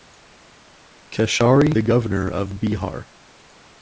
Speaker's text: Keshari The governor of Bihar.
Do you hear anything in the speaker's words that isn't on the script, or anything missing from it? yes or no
no